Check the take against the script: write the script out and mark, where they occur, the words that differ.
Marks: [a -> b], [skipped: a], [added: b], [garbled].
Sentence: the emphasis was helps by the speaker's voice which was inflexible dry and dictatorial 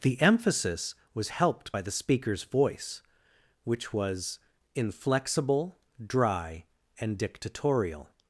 the emphasis was [helps -> helped] by the speaker's voice which was inflexible dry and dictatorial